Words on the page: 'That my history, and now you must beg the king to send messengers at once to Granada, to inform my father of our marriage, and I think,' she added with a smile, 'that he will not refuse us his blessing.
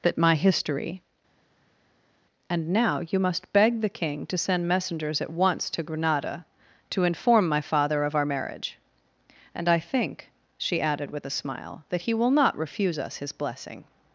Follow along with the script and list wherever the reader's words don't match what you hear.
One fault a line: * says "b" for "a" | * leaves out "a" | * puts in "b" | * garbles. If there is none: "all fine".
all fine